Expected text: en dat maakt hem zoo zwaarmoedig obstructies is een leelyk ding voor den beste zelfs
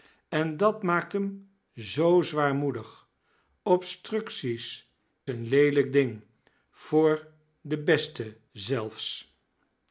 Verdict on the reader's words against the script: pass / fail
fail